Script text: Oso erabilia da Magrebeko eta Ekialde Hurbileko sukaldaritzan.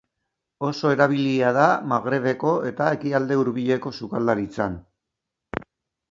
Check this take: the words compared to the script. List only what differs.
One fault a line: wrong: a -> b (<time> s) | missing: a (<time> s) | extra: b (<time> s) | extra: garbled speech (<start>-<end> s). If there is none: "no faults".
no faults